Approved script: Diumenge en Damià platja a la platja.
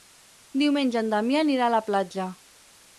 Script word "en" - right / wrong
right